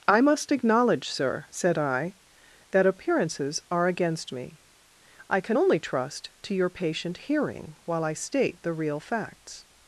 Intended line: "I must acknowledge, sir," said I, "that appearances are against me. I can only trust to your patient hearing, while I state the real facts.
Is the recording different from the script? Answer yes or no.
no